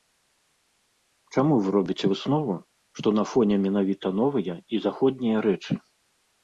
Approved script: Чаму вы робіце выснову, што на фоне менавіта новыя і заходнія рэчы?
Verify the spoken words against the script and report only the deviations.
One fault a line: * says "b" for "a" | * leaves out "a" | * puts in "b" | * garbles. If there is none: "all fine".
all fine